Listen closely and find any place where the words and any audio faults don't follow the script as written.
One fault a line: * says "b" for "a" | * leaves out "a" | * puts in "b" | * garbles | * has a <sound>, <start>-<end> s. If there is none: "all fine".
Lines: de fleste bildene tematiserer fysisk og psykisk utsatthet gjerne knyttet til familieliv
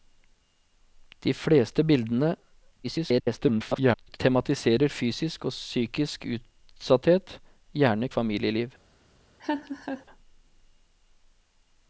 * garbles
* leaves out "knyttet til"
* has a laugh, 9.4-10.1 s